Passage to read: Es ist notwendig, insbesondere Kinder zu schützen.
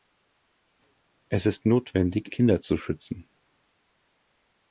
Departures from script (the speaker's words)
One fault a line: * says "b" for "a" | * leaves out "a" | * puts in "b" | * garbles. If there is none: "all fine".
* leaves out "insbesondere"